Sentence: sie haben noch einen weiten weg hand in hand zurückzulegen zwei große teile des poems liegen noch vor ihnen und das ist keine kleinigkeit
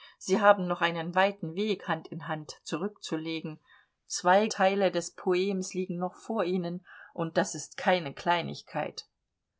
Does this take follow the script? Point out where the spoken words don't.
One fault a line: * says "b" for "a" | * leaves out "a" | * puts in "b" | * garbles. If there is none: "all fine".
* leaves out "große"